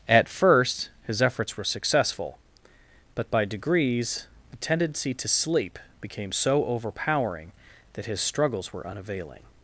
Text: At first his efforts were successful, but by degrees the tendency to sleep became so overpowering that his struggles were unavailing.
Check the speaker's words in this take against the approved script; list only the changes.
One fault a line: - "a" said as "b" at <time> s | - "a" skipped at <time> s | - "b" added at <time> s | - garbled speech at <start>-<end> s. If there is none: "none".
none